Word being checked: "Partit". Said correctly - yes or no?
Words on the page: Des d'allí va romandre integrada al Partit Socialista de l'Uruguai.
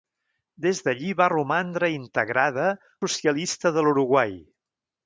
no